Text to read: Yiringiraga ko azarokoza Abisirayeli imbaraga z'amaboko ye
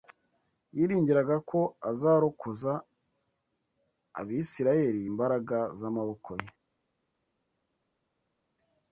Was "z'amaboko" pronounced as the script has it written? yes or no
yes